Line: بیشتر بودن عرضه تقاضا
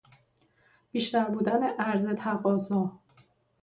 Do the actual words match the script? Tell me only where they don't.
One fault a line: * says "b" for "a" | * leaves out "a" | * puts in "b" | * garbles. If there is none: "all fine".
all fine